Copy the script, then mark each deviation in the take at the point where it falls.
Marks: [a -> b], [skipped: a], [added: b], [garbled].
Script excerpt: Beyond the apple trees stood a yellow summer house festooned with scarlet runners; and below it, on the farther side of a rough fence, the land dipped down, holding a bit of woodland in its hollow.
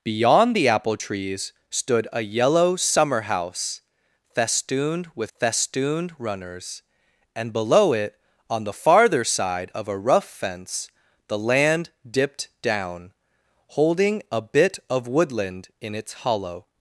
Beyond the apple trees stood a yellow summer house festooned with [scarlet -> festooned] runners; and below it, on the farther side of a rough fence, the land dipped down, holding a bit of woodland in its hollow.